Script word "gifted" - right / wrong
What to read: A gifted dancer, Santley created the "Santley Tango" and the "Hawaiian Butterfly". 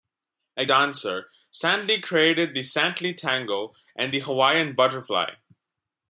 wrong